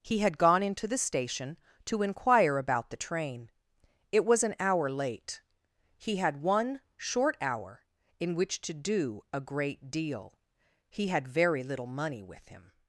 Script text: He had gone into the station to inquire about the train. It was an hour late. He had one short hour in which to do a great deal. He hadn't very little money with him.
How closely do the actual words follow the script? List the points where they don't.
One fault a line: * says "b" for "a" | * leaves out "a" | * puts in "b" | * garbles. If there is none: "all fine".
* says "had" for "hadn't"